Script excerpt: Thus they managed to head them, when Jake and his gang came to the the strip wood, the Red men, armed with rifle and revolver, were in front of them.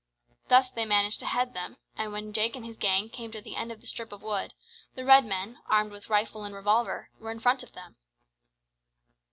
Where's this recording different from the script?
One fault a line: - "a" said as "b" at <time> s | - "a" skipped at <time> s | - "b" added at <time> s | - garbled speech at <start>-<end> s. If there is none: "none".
- "and" added at 1.9 s
- "end of" added at 3.5 s
- "of" added at 4.1 s